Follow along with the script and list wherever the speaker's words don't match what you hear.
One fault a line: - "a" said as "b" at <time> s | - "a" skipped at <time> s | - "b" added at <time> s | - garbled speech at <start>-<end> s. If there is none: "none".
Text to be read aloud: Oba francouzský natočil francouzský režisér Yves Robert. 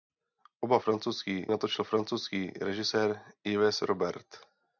none